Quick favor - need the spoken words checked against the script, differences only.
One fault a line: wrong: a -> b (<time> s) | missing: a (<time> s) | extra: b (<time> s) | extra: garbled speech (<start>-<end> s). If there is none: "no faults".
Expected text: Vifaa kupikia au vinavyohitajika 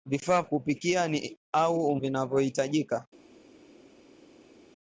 no faults